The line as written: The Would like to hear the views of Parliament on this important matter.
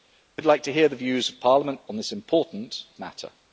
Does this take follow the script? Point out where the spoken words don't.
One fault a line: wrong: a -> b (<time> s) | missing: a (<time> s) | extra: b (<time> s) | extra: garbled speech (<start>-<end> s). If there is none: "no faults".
no faults